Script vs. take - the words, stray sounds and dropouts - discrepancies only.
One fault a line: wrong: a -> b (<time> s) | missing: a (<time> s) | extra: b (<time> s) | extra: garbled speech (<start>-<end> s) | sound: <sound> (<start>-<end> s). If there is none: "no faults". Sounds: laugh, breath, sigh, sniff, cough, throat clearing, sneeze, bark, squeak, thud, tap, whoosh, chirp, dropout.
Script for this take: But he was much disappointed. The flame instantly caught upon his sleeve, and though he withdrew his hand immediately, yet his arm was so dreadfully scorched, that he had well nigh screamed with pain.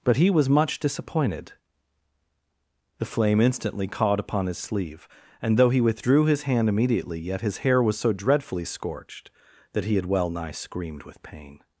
wrong: arm -> hair (7.6 s)